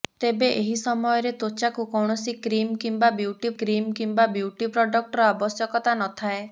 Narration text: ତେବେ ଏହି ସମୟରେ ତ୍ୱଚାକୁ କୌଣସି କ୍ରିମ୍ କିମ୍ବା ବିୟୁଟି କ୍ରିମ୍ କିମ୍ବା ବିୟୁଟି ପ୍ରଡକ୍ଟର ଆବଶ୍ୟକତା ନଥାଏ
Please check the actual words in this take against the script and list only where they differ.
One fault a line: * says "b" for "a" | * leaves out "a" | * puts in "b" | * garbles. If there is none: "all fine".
all fine